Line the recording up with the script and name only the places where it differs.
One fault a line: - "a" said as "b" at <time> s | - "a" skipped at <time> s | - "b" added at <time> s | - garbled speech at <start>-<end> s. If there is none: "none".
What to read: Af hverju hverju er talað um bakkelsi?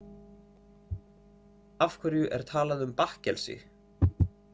- "hverju" skipped at 2.3 s